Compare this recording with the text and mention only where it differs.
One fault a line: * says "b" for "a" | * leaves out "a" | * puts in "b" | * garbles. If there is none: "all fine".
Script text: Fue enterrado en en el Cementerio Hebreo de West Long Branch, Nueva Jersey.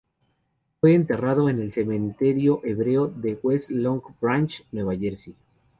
* leaves out "en"